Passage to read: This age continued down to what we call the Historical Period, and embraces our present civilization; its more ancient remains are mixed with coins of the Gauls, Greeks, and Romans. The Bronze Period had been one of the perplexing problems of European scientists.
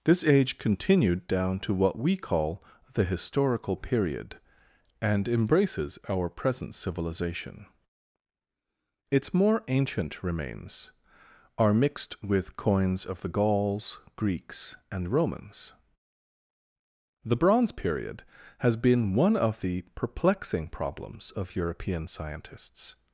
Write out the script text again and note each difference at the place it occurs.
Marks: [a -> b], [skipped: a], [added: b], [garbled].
This age continued down to what we call the Historical Period, and embraces our present civilization; its more ancient remains are mixed with coins of the Gauls, Greeks, and Romans. The Bronze Period [had -> has] been one of the perplexing problems of European scientists.